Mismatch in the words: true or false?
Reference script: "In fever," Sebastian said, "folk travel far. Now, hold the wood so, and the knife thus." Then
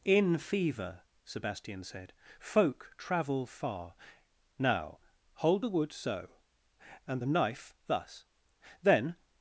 false